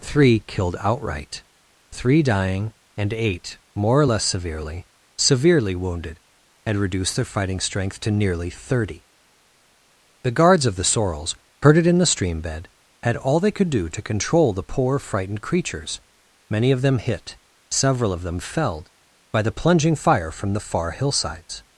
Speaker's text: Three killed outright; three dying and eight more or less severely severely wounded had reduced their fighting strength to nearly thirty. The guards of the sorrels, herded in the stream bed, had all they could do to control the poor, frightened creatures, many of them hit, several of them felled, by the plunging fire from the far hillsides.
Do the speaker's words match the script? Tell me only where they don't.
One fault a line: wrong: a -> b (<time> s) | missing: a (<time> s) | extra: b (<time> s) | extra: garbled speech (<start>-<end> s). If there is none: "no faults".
no faults